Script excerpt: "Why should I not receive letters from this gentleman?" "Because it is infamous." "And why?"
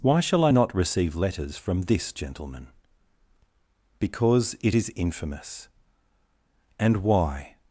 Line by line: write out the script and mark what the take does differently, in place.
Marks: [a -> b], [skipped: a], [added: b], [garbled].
"Why [should -> shall] I not receive letters from this gentleman?" "Because it is infamous." "And why?"